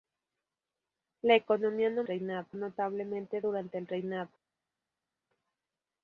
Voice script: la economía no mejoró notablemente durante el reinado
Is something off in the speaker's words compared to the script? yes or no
yes